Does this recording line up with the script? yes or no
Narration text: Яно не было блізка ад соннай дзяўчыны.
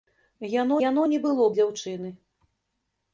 no